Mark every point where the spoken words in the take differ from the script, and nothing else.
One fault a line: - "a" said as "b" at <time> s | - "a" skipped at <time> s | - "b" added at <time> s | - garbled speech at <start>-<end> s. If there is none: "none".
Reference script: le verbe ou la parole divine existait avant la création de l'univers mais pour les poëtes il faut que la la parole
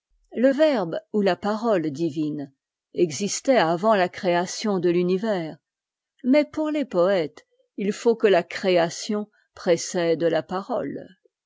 - "création précède" added at 8.4 s